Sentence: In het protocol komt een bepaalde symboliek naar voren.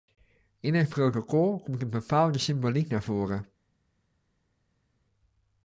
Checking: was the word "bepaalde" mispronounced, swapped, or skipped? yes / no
no